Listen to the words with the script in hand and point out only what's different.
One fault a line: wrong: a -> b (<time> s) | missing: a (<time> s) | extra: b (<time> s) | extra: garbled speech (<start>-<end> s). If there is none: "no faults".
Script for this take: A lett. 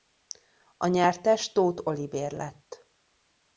extra: nyertes Tóth Olivér (0.9 s)